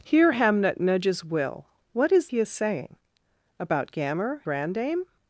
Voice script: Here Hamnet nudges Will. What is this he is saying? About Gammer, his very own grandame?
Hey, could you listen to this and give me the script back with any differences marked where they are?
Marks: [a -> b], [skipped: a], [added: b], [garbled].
Here Hamnet nudges Will. What is [skipped: this] he is saying? About Gammer, [skipped: his very own] grandame?